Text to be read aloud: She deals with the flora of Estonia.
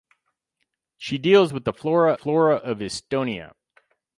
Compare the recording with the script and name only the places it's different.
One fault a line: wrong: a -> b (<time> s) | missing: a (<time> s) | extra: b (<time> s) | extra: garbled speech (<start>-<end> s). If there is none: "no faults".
extra: flora (2.1 s)